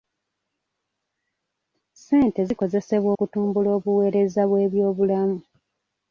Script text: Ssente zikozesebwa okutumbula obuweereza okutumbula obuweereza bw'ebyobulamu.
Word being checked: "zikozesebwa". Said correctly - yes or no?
yes